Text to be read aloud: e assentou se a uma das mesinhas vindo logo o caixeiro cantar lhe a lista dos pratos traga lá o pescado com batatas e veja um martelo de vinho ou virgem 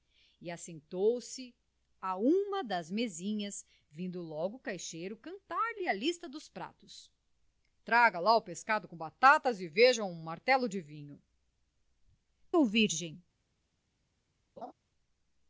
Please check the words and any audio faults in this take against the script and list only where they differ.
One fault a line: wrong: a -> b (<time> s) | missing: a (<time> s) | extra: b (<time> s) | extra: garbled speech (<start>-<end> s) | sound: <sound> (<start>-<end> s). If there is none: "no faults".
sound: laugh (14.6-14.7 s)